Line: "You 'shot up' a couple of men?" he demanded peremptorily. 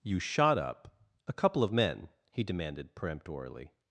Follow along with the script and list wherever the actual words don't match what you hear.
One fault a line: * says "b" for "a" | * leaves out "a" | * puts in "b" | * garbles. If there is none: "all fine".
all fine